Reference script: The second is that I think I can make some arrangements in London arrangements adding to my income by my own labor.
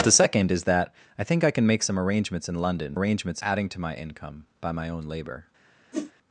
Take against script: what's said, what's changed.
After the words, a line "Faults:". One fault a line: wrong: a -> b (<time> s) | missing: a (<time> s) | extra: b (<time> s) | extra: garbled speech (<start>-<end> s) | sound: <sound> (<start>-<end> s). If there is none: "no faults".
The second is that I think I can make some arrangements in London arrangements adding to my income by my own labor.
Faults:
sound: whoosh (5.9-6.1 s)